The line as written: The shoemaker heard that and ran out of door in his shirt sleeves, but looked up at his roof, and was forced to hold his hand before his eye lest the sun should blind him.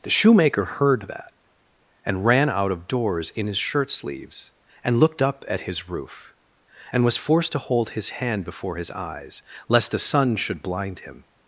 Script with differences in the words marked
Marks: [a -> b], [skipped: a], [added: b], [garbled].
The shoemaker heard that and ran out of [door -> doors] in his shirt sleeves, [but -> and] looked up at his roof, and was forced to hold his hand before his [eye -> eyes] lest the sun should blind him.